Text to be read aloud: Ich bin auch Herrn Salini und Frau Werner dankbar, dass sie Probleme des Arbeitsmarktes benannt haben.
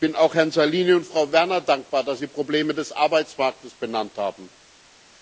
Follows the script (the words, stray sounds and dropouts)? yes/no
yes